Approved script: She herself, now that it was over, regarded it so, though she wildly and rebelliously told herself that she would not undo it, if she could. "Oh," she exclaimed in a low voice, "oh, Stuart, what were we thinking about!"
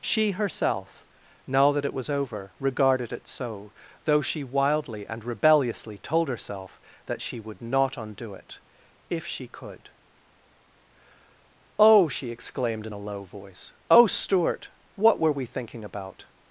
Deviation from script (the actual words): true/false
false